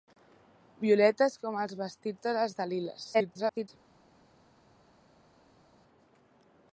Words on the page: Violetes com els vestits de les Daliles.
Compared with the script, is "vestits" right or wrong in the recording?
right